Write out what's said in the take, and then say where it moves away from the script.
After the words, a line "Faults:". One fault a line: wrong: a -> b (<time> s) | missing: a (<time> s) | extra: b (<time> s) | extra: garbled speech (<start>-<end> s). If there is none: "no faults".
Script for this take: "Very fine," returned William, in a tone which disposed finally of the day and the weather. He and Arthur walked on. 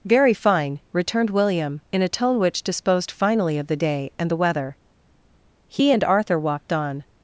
"Very fine," returned William, in a tone which disposed finally of the day and the weather. He and Arthur walked on.
Faults:
no faults